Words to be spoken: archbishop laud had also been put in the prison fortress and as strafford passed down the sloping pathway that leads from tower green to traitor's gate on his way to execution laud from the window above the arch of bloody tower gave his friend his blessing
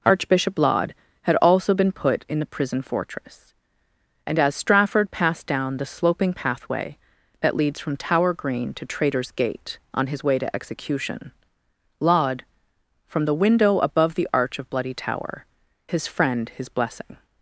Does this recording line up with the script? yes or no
no